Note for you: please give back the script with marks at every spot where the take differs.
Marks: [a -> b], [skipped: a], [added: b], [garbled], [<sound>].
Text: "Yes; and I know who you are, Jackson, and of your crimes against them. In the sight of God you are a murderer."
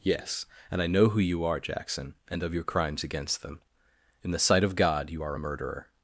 "Yes; and I know who you are, Jackson, and of your crimes against them. In the sight of God you are a murderer."